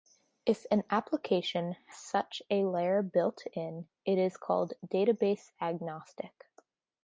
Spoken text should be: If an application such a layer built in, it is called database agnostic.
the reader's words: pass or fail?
pass